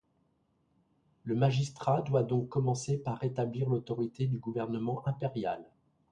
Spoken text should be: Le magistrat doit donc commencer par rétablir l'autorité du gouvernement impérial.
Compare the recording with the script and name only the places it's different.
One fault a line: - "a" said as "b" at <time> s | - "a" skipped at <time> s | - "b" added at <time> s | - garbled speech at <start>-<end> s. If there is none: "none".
none